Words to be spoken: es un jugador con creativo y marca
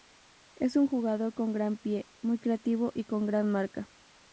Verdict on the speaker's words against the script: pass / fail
fail